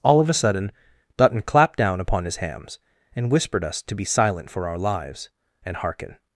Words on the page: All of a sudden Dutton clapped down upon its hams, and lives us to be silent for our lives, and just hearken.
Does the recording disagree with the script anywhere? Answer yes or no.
yes